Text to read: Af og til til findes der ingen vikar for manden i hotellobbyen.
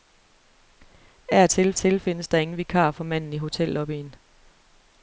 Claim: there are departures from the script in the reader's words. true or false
false